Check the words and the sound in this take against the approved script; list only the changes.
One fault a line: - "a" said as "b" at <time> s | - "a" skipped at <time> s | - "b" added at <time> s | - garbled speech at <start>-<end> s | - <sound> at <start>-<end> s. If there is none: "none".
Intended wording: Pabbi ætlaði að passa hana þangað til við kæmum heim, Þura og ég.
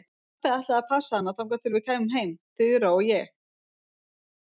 none